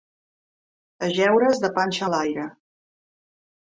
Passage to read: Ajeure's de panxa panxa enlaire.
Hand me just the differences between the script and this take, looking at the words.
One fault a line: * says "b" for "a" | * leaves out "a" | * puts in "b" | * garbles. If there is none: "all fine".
* leaves out "panxa"